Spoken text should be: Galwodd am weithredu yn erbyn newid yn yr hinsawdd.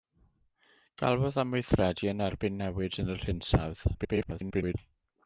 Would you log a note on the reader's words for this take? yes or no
yes